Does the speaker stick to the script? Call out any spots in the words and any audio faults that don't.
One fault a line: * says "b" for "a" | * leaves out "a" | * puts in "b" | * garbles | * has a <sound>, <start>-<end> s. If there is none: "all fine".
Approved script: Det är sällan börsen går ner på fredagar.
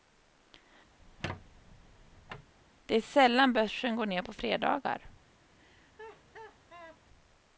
* has a squeak, 1.0-2.5 s
* has a laugh, 5.6-7.0 s